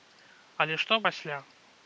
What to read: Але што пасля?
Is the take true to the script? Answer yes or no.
yes